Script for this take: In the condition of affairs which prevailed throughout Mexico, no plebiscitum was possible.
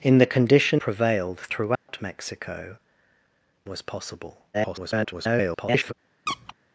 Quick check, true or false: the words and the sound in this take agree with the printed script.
false